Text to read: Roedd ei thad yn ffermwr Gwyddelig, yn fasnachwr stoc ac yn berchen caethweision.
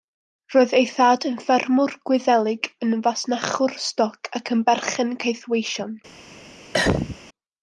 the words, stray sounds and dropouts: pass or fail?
fail